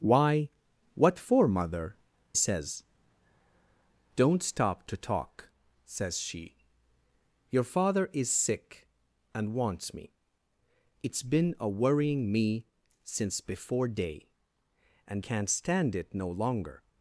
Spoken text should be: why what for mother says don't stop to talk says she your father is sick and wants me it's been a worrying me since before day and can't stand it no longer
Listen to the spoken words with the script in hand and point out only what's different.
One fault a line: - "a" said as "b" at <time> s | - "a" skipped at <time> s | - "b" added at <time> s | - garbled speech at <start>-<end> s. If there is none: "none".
none